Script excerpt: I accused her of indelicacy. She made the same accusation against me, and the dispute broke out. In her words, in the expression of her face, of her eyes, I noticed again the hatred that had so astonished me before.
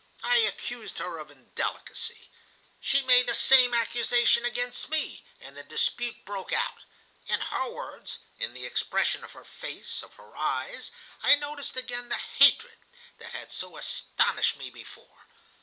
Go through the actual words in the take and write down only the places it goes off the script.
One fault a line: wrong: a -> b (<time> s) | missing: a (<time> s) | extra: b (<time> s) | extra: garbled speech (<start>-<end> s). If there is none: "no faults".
no faults